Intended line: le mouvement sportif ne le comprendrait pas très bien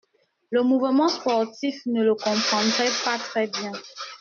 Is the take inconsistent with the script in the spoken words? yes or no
no